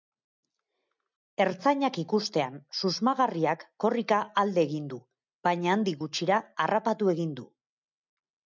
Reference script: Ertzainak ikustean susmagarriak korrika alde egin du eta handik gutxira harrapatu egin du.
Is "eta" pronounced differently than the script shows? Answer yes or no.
yes